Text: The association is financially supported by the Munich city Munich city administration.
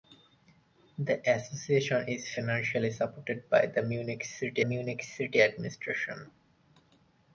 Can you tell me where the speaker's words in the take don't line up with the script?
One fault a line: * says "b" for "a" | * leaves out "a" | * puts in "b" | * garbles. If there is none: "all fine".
all fine